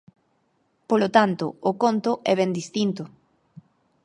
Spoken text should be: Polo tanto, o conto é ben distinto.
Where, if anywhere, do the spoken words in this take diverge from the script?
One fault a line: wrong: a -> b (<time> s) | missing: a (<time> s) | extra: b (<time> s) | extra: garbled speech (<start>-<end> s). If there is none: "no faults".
no faults